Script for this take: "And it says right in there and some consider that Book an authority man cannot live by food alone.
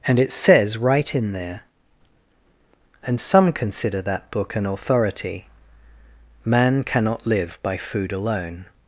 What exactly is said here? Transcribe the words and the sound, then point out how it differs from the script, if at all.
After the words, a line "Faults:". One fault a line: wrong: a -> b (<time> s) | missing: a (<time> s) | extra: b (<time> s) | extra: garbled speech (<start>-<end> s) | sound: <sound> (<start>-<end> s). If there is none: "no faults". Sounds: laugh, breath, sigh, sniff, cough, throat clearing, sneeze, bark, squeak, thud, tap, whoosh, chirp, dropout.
"And it says right in there and some consider that Book an authority man cannot live by food alone.
Faults:
no faults